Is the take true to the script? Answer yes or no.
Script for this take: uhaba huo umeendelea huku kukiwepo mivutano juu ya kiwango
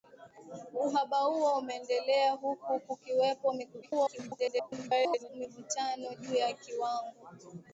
no